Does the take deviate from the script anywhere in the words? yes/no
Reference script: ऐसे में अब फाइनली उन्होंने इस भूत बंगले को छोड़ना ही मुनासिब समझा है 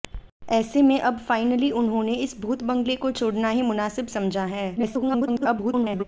yes